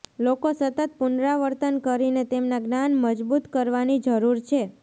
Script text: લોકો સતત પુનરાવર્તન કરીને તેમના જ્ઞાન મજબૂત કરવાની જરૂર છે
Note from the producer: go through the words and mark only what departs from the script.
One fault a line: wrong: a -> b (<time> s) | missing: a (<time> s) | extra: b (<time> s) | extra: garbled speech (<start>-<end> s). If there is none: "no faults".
no faults